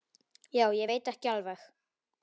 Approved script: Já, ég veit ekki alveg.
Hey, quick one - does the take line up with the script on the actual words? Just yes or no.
yes